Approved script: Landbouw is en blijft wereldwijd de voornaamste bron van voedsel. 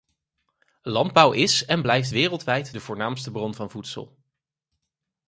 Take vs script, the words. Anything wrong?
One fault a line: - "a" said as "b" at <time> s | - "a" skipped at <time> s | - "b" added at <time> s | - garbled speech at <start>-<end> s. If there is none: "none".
none